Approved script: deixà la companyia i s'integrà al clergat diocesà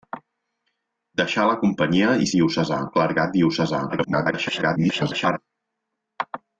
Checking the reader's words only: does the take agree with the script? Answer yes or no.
no